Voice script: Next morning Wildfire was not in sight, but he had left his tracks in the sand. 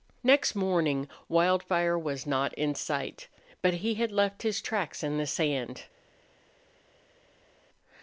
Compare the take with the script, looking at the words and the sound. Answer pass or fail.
pass